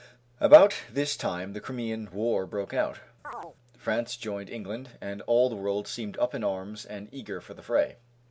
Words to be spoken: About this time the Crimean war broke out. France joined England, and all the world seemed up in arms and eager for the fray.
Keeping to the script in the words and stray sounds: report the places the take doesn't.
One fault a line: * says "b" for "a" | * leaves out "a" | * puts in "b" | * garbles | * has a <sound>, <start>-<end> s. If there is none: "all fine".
* has a chirp, 3.2-3.6 s